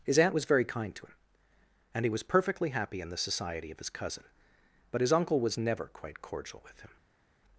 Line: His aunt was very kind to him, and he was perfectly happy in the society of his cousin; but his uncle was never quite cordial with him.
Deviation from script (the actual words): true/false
false